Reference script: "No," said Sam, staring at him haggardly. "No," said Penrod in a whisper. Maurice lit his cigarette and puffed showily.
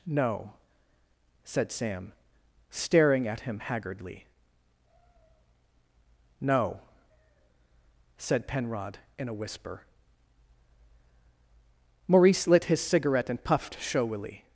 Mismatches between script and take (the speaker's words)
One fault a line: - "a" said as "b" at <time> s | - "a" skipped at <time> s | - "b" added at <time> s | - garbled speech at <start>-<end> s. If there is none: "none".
none